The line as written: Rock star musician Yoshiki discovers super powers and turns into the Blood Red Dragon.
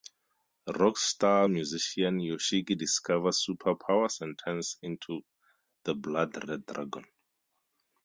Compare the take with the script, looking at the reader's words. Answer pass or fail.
pass